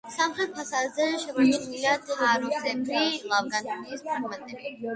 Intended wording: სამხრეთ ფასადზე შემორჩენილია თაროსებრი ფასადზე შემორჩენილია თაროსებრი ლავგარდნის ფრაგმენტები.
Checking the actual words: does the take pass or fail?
fail